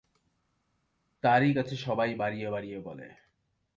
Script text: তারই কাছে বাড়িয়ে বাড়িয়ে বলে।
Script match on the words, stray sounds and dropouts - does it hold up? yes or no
no